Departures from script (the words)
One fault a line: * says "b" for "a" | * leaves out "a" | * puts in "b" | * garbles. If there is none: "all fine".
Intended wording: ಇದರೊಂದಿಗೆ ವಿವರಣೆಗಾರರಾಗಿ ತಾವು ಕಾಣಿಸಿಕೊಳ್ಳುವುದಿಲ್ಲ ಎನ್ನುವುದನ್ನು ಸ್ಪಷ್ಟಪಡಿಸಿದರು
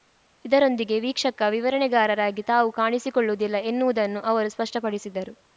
* puts in "ವೀಕ್ಷಕ"
* puts in "ಅವರು"